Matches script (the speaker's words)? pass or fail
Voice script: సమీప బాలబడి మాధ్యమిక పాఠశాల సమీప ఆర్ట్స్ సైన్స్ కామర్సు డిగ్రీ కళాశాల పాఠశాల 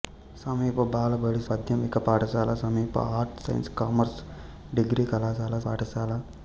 pass